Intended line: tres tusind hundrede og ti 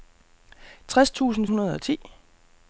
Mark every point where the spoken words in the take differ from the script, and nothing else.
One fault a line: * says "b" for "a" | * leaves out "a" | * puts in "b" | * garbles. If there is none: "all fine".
all fine